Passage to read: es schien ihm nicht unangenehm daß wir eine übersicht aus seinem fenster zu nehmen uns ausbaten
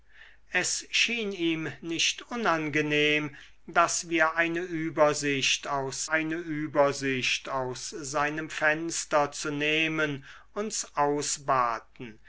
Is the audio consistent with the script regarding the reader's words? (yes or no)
no